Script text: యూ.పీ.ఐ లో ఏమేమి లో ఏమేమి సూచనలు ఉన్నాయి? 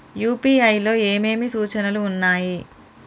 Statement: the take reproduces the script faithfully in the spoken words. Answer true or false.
false